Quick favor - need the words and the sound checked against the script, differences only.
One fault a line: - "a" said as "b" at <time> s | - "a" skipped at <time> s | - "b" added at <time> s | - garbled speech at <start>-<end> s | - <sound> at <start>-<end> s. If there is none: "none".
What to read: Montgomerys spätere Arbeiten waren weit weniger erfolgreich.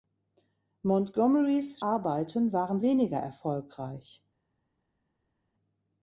- "spätere" skipped at 1.8 s
- "weit" skipped at 2.8 s